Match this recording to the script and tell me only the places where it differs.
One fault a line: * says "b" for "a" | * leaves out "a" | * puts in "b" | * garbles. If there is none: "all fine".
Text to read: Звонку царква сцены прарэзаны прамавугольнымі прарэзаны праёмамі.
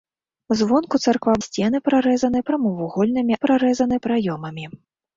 all fine